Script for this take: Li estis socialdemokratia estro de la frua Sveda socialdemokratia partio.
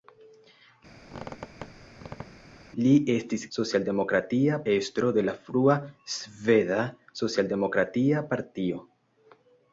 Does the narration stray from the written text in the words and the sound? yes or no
yes